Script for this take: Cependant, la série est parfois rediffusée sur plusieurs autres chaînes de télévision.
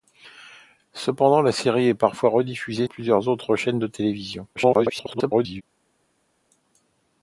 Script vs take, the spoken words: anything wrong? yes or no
yes